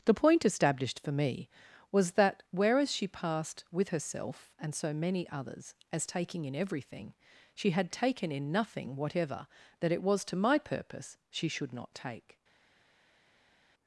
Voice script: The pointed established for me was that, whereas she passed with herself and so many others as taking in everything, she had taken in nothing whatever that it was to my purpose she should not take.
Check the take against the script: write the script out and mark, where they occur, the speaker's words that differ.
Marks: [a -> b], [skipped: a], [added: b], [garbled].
The [pointed -> point] established for me was that, whereas she passed with herself and so many others as taking in everything, she had taken in nothing whatever that it was to my purpose she should not take.